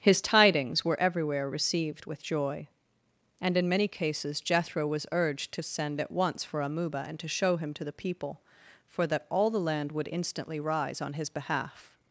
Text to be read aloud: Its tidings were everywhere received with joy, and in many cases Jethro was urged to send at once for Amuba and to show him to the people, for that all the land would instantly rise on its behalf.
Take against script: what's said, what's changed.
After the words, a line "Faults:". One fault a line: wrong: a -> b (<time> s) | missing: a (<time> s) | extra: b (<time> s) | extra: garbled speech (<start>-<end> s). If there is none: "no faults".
His tidings were everywhere received with joy, and in many cases Jethro was urged to send at once for Amuba and to show him to the people, for that all the land would instantly rise on his behalf.
Faults:
wrong: Its -> His (0.0 s)
wrong: its -> his (11.1 s)